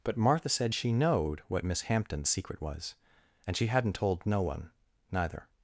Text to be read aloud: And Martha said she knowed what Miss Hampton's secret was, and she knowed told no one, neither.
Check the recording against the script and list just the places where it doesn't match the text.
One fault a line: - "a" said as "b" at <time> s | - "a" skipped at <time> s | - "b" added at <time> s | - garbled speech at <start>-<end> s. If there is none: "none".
- "And" said as "But" at 0.0 s
- "knowed" said as "hadn't" at 3.7 s